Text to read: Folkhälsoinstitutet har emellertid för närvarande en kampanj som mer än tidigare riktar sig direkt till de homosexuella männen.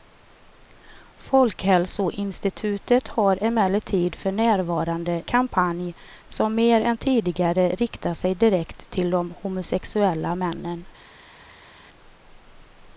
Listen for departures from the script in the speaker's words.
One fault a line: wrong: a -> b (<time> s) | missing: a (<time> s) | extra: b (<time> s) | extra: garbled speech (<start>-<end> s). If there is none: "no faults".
missing: en (5.2 s)